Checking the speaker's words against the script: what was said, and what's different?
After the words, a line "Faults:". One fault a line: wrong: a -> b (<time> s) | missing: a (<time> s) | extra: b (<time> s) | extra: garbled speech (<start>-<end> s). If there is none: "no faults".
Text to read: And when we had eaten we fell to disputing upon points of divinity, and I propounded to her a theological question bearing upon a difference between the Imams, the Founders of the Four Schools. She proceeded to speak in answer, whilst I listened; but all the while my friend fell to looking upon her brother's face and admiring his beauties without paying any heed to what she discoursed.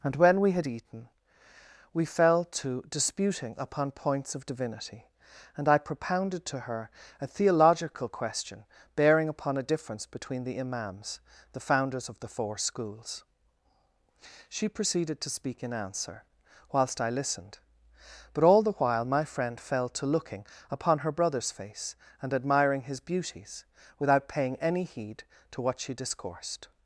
And when we had eaten we fell to disputing upon points of divinity, and I propounded to her a theological question bearing upon a difference between the Imams, the Founders of the Four Schools. She proceeded to speak in answer, whilst I listened; but all the while my friend fell to looking upon her brother's face and admiring his beauties without paying any heed to what she discoursed.
Faults:
no faults